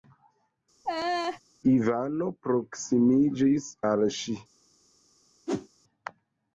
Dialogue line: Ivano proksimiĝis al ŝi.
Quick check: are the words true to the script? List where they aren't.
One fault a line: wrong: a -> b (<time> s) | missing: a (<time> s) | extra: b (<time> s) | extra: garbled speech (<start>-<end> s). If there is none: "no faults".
no faults